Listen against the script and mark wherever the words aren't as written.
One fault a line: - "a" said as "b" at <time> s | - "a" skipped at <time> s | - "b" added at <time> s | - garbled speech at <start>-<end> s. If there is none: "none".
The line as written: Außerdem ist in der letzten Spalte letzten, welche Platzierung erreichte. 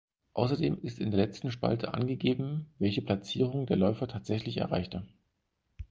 - "letzten" said as "angegeben" at 1.9 s
- "der Läufer tatsächlich" added at 3.7 s